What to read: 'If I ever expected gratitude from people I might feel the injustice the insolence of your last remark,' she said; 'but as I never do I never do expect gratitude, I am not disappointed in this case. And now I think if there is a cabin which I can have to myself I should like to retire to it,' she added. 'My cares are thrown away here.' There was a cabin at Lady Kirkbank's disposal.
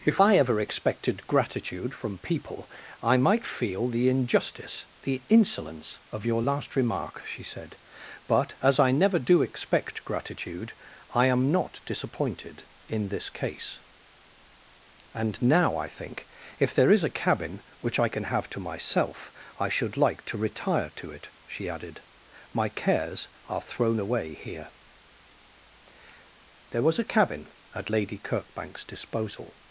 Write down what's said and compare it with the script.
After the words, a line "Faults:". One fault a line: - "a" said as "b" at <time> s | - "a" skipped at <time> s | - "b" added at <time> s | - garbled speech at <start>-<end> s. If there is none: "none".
'If I ever expected gratitude from people I might feel the injustice the insolence of your last remark,' she said; 'but as I never do expect gratitude, I am not disappointed in this case. And now I think if there is a cabin which I can have to myself I should like to retire to it,' she added. 'My cares are thrown away here.' There was a cabin at Lady Kirkbank's disposal.
Faults:
- "I never do" skipped at 9.4 s